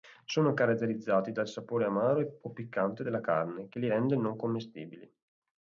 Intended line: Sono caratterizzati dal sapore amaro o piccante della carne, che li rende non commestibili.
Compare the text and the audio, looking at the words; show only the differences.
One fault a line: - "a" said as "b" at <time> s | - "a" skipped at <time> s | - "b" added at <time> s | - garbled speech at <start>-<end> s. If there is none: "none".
none